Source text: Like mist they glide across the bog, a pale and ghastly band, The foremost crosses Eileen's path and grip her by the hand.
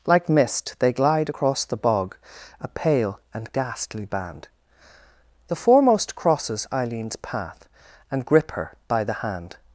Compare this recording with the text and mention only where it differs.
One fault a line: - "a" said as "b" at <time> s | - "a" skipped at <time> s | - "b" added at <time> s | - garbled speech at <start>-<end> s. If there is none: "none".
none